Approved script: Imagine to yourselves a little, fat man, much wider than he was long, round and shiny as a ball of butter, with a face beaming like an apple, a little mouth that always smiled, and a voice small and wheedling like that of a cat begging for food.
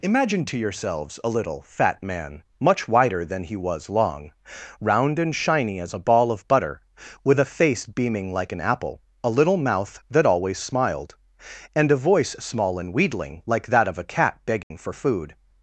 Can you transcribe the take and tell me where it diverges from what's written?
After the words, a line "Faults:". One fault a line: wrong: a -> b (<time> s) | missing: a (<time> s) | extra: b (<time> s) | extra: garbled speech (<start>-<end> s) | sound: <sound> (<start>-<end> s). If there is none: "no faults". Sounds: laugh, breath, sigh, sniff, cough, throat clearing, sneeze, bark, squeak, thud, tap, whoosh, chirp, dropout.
Imagine to yourselves a little, fat man, much wider than he was long, round and shiny as a ball of butter, with a face beaming like an apple, a little mouth that always smiled, and a voice small and wheedling like that of a cat begging for food.
Faults:
sound: dropout (14.6-14.7 s)